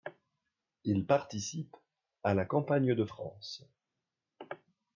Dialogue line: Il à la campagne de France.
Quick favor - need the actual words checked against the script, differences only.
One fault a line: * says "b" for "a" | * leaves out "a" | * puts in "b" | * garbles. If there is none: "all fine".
* puts in "participe"